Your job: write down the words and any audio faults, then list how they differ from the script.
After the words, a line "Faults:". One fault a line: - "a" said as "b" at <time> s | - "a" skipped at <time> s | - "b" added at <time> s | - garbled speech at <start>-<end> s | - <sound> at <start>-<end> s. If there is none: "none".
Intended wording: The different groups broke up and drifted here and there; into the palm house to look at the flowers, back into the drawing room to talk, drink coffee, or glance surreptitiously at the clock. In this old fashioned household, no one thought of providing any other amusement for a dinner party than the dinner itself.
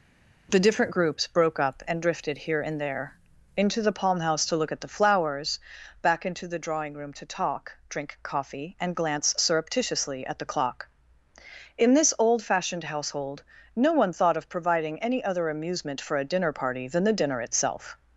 The different groups broke up and drifted here and there; into the palm house to look at the flowers, back into the drawing room to talk, drink coffee, and glance surreptitiously at the clock. In this old fashioned household, no one thought of providing any other amusement for a dinner party than the dinner itself.
Faults:
- "or" said as "and" at 8.8 s